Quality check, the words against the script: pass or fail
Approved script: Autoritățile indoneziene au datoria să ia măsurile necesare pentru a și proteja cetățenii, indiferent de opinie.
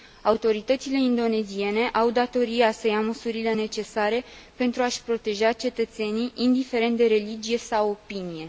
fail